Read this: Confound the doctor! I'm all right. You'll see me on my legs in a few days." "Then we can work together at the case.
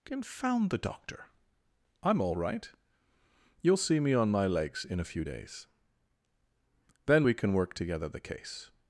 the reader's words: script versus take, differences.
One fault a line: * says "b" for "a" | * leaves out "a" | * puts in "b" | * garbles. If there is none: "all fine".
* leaves out "at"